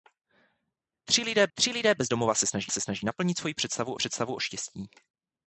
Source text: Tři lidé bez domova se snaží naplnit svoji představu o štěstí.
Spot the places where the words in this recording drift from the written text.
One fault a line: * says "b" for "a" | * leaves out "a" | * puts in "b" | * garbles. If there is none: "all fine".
* puts in "tři lidé"
* puts in "se snaží"
* puts in "představu"